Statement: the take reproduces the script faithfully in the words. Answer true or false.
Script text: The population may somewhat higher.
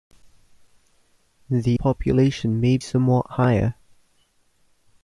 true